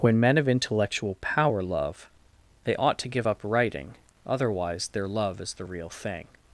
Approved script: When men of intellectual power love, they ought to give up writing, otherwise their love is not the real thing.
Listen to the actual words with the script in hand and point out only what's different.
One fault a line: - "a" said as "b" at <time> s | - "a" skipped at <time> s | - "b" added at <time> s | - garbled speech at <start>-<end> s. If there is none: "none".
- "not" skipped at 5.5 s